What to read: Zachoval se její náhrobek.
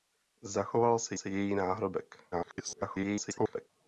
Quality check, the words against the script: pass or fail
fail